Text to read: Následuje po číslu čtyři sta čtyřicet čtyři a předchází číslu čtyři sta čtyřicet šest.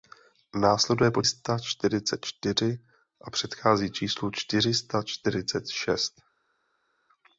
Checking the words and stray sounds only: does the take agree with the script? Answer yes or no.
no